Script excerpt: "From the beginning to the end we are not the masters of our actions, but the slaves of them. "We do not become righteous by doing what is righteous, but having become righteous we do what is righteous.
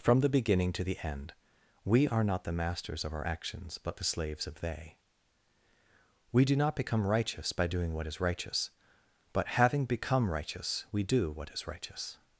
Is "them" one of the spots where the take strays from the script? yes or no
yes